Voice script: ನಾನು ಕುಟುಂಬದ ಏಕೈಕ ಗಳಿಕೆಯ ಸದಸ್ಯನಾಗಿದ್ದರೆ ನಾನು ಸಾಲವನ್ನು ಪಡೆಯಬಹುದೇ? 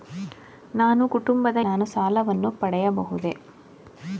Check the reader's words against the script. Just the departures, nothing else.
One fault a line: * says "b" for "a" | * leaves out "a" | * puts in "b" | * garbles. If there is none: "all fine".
* leaves out "ಏಕೈಕ ಗಳಿಕೆಯ ಸದಸ್ಯನಾಗಿದ್ದರೆ"